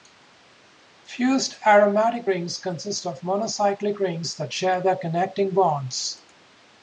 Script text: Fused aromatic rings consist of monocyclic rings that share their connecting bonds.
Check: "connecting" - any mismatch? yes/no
no